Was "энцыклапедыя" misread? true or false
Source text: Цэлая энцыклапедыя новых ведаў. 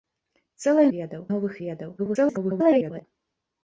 true